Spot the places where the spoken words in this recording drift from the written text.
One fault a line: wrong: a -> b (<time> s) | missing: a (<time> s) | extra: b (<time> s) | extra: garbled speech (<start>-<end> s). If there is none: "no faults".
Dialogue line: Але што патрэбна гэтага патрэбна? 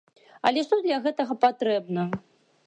wrong: патрэбна -> для (0.8 s)